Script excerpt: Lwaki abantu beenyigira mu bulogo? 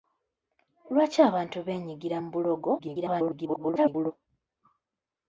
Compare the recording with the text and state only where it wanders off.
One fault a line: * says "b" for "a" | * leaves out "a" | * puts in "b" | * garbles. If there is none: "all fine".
* garbles